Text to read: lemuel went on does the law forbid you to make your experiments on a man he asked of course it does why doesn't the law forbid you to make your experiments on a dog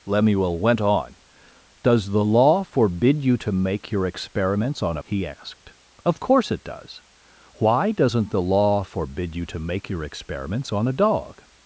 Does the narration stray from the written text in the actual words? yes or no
yes